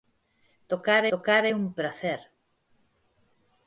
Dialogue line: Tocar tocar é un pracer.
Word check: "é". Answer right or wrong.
right